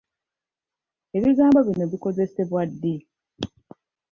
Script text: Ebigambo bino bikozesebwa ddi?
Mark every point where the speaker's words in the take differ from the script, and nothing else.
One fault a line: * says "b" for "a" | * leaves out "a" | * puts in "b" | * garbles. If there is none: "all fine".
all fine